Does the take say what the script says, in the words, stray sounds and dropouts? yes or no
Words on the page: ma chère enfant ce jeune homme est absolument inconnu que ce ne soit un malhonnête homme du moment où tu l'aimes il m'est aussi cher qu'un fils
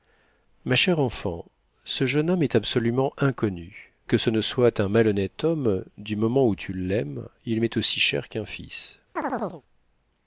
no